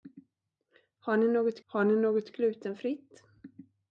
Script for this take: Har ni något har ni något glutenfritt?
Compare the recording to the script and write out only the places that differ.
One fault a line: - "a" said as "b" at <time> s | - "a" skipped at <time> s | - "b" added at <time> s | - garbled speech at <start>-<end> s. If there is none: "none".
none